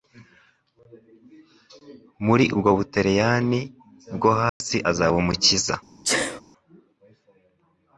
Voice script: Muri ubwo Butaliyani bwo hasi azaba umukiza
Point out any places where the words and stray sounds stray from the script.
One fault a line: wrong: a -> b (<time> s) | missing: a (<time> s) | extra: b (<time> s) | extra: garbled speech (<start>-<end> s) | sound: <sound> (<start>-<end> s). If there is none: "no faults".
sound: dropout (4.5-4.6 s)
sound: sneeze (6.0-6.4 s)